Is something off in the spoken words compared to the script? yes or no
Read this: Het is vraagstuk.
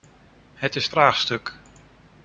no